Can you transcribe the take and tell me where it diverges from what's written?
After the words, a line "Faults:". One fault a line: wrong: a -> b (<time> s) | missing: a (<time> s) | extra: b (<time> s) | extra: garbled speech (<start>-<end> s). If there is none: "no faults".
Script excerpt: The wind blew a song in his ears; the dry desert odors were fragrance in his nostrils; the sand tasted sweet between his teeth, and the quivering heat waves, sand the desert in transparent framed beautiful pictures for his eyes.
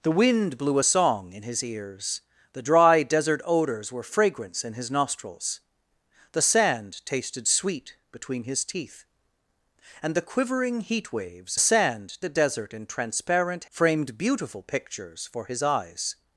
The wind blew a song in his ears; the dry desert odors were fragrance in his nostrils; the sand tasted sweet between his teeth, and the quivering heat waves, sand the desert in transparent framed beautiful pictures for his eyes.
Faults:
no faults